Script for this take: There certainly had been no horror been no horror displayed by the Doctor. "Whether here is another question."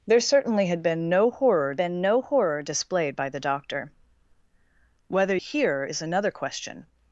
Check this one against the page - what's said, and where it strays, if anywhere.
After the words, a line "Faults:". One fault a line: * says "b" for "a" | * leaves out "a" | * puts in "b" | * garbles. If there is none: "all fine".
There certainly had been no horror been no horror displayed by the Doctor. "Whether here is another question."
Faults:
all fine